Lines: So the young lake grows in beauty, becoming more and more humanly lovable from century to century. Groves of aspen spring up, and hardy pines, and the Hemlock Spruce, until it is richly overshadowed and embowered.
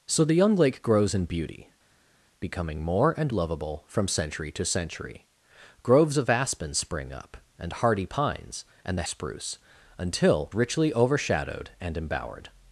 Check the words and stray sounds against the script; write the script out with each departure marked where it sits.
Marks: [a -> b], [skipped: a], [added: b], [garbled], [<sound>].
So the young lake grows in beauty, becoming more and [skipped: more humanly] lovable from century to century. Groves of aspen spring up, and hardy pines, and the [skipped: Hemlock] Spruce, until [skipped: it is] richly overshadowed and embowered.